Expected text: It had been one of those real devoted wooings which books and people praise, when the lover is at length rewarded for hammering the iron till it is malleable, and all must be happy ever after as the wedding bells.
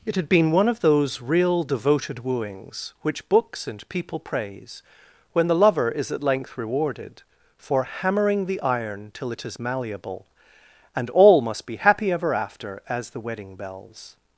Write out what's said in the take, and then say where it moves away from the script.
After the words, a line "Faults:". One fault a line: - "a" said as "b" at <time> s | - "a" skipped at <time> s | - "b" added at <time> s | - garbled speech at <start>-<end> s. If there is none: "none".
It had been one of those real devoted wooings which books and people praise, when the lover is at length rewarded for hammering the iron till it is malleable, and all must be happy ever after as the wedding bells.
Faults:
none